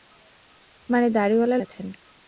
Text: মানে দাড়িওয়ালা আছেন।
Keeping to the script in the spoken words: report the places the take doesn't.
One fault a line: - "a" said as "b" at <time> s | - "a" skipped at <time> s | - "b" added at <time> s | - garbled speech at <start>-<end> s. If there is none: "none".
none